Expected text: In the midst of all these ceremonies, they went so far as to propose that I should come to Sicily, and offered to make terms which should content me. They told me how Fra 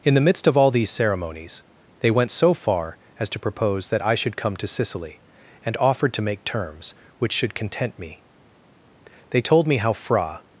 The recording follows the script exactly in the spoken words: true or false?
true